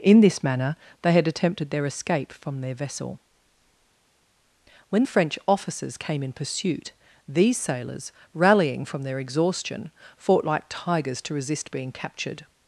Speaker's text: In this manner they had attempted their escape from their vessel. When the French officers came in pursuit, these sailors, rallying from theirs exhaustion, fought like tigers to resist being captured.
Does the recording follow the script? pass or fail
fail